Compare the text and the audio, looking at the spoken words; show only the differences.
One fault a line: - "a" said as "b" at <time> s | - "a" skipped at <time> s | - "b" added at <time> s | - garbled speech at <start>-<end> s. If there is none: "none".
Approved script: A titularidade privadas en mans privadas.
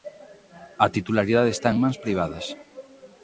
- "privadas" said as "está" at 1.5 s